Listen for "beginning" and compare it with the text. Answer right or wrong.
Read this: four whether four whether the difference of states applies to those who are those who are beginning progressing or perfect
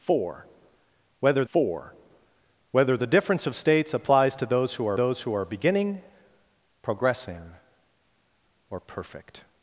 right